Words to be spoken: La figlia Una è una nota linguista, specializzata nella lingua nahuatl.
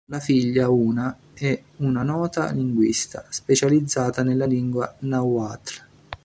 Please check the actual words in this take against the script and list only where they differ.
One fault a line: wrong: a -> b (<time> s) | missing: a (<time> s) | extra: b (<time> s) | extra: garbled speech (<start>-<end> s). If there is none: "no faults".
no faults